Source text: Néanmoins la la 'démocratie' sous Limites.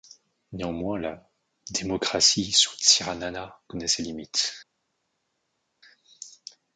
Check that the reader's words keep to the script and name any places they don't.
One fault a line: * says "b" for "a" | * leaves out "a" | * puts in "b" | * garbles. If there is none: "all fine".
* leaves out "la"
* puts in "Tsiranana connaît ses"